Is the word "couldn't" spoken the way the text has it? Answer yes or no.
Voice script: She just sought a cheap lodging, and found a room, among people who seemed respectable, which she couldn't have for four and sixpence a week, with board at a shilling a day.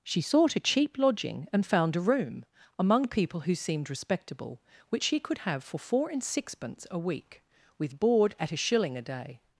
no